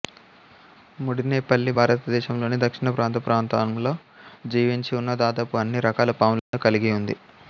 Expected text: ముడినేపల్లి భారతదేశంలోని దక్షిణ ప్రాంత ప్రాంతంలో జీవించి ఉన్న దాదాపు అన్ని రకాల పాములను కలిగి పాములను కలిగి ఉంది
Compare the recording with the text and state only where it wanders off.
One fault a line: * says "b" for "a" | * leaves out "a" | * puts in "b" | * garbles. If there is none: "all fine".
* leaves out "పాములను కలిగి"